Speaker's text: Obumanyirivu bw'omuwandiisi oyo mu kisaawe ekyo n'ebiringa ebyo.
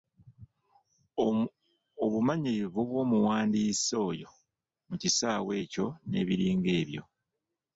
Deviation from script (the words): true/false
false